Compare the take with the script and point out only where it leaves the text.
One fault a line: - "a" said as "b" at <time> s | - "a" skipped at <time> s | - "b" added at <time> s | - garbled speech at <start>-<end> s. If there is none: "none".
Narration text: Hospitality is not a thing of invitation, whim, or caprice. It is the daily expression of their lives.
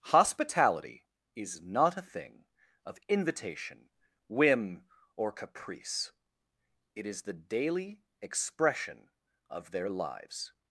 none